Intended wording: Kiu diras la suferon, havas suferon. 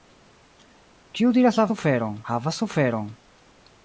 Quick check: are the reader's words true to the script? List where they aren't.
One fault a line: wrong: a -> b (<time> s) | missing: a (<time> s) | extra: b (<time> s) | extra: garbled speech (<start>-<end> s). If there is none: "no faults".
no faults